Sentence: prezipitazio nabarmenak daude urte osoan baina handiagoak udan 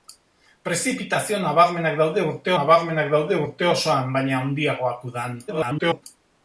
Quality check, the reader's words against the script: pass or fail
fail